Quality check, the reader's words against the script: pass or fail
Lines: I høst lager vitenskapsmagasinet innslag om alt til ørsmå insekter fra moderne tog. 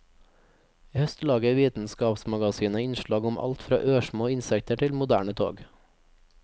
fail